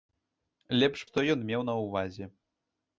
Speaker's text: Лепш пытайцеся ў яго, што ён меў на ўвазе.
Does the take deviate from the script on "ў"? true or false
true